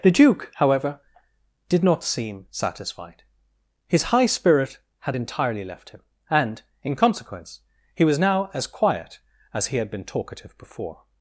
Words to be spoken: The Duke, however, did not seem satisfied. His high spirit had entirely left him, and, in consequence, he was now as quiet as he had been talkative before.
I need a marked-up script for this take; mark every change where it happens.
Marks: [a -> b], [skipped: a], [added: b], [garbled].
The Duke, however, did not seem satisfied. His high spirit had entirely left him, and, in consequence, he was now as quiet as he had been talkative before.